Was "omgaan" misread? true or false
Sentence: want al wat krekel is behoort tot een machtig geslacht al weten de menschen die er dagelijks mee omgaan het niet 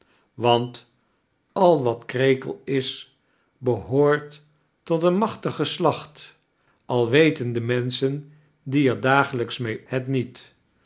true